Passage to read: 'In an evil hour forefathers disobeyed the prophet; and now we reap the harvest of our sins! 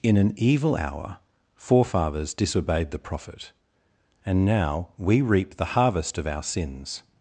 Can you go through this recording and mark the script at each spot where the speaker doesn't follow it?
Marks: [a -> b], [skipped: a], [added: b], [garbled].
'In an evil hour forefathers disobeyed the prophet; and now we reap the harvest of our sins!